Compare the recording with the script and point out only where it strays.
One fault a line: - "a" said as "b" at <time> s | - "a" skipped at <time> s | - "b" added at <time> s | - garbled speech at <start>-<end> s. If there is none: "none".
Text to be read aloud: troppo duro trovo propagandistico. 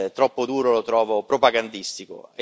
- "lo" added at 0.7 s